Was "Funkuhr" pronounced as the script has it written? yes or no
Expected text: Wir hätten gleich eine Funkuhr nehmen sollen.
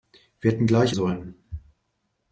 no